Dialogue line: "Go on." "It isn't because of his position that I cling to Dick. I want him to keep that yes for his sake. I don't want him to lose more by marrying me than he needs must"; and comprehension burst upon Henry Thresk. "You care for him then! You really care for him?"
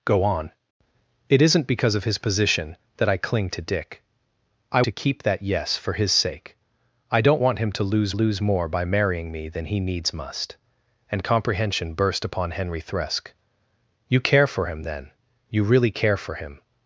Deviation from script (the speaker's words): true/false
true